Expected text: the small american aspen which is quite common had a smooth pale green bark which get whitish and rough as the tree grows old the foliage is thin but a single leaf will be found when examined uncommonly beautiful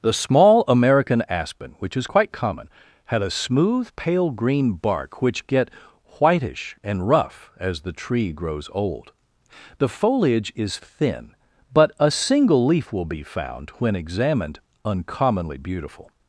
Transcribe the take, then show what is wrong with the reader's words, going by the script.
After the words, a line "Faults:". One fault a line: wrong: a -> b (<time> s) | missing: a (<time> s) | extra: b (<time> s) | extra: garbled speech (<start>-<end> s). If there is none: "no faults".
the small american aspen which is quite common had a smooth pale green bark which get whitish and rough as the tree grows old the foliage is thin but a single leaf will be found when examined uncommonly beautiful
Faults:
no faults